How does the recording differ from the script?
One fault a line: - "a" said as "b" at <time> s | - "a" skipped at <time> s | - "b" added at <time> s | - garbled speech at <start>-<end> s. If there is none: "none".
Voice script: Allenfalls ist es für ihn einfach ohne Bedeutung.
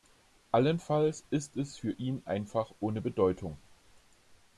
none